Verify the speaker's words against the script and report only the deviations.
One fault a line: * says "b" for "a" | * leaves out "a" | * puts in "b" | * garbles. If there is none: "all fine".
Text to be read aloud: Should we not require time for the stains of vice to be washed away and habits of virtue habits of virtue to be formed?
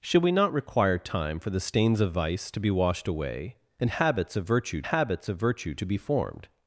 all fine